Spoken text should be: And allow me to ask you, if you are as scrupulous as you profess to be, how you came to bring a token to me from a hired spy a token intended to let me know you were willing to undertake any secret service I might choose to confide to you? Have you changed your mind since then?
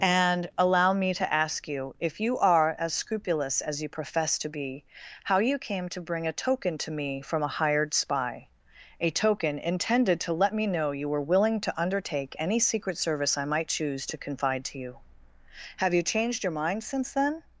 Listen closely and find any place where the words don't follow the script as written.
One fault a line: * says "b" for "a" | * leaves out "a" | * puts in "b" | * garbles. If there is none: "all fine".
all fine